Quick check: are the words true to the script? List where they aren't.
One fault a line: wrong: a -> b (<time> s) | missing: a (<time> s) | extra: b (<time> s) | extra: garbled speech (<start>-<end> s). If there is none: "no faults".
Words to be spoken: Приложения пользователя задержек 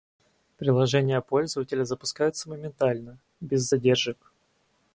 extra: запускаются моментально без (1.8 s)